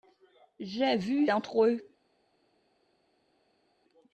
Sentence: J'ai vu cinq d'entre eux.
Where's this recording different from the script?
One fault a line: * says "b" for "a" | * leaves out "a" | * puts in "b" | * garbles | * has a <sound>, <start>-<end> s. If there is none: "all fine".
* leaves out "cinq"